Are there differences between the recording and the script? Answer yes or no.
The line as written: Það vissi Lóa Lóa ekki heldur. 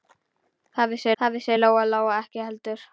yes